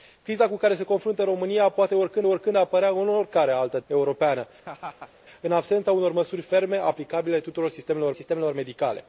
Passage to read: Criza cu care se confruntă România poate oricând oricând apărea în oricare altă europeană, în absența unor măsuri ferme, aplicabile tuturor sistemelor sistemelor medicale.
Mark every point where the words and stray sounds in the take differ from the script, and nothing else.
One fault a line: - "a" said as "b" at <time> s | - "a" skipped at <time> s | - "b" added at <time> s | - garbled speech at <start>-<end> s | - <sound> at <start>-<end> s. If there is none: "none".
- laugh at 4.7-5.1 s